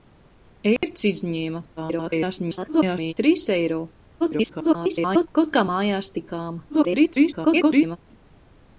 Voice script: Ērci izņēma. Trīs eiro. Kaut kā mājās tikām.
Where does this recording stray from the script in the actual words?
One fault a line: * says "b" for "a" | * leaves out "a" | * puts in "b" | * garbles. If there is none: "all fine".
* garbles
* garbles
* garbles